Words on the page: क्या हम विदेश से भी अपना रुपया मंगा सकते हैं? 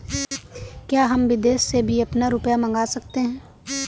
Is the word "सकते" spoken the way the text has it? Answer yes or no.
yes